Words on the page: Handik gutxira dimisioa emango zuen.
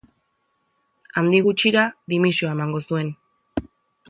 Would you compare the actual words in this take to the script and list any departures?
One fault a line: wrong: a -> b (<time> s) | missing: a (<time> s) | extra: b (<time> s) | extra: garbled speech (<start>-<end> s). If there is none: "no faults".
no faults